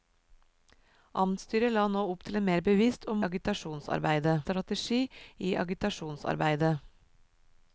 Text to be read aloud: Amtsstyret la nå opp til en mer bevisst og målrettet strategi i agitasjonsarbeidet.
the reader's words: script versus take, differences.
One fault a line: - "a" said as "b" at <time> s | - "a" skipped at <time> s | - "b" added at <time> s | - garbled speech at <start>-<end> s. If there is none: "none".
- "målrettet" said as "agitasjonsarbeidet" at 3.3 s